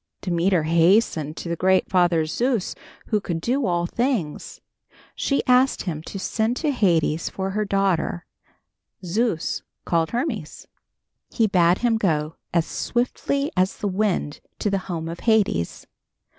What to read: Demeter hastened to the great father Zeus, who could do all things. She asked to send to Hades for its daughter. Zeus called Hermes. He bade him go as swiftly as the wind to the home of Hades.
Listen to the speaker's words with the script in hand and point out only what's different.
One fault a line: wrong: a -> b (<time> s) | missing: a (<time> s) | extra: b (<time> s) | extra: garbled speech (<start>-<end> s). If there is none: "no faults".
extra: him (5.8 s)
wrong: its -> her (7.5 s)